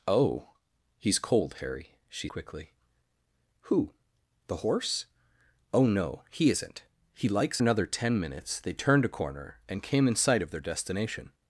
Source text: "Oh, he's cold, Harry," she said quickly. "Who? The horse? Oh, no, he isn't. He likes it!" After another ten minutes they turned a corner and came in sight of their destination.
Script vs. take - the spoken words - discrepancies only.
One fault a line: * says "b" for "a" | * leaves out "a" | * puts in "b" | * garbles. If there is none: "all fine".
* leaves out "said"
* leaves out "it After"